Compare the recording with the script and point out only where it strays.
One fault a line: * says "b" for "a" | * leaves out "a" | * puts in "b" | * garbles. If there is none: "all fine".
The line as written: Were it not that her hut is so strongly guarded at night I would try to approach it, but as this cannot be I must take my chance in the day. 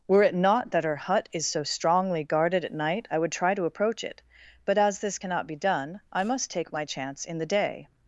* puts in "done"